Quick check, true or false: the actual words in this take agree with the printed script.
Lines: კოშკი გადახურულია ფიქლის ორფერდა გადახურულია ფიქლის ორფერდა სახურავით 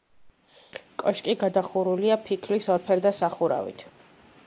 false